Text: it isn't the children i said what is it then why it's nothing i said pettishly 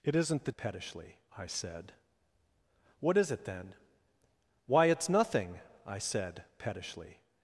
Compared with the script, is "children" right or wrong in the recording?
wrong